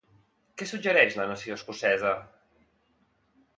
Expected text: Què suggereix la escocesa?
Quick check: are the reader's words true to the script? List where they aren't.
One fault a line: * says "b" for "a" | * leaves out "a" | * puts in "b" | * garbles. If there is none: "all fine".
* puts in "nació"